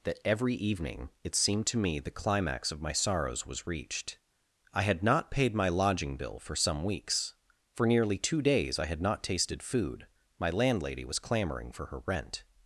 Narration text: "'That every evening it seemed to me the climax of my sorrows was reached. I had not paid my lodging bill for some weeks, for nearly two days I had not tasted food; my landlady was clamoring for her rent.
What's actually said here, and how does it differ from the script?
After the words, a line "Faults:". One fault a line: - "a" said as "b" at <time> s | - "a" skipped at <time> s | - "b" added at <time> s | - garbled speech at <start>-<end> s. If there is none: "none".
"'That every evening it seemed to me the climax of my sorrows was reached. I had not paid my lodging bill for some weeks, for nearly two days I had not tasted food; my landlady was clamoring for her rent.
Faults:
none